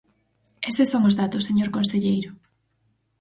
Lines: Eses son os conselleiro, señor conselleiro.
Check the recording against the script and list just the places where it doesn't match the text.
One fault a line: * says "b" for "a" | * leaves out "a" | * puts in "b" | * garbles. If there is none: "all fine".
* says "datos" for "conselleiro"